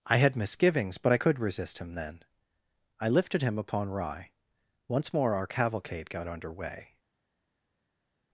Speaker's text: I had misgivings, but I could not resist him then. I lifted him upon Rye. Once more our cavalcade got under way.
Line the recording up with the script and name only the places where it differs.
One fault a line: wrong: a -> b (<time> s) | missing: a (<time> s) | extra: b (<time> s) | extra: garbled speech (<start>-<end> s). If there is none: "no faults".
missing: not (1.4 s)